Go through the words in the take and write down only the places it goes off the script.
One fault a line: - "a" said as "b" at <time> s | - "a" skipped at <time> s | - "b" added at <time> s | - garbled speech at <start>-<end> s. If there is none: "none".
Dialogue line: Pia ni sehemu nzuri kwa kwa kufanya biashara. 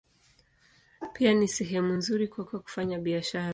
none